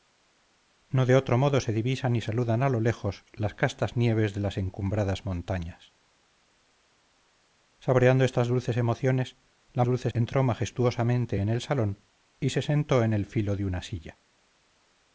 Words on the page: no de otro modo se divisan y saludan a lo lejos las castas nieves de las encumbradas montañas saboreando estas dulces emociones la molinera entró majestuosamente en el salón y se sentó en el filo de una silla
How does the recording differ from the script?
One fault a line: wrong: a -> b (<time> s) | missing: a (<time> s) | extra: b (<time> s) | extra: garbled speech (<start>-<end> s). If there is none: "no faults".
wrong: molinera -> dulces (9.8 s)